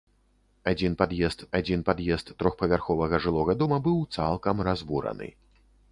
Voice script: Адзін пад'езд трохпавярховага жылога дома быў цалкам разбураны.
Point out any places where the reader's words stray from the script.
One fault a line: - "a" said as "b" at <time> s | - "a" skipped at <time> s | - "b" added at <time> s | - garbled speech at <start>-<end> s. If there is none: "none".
- "адзін пад'езд" added at 1.6 s